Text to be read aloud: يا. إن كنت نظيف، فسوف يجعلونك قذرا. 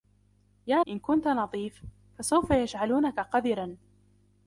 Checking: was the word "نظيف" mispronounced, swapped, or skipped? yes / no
no